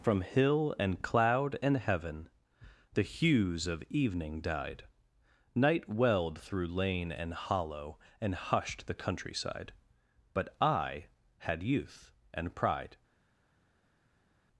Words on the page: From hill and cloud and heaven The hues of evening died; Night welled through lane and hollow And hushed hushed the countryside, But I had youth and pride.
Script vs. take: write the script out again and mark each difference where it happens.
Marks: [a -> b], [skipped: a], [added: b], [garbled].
From hill and cloud and heaven The hues of evening died; Night welled through lane and hollow And hushed [skipped: hushed] the countryside, But I had youth and pride.